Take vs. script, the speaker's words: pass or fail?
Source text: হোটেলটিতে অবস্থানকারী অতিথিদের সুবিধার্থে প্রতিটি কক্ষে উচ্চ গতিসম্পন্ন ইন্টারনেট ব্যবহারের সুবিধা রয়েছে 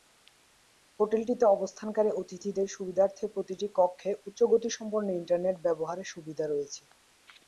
pass